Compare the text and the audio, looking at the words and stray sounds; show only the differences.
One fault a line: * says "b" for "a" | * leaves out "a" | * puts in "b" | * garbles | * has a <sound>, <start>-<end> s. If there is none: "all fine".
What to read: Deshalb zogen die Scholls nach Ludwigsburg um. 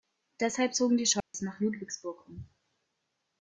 * has a dropout, 1.2-1.3 s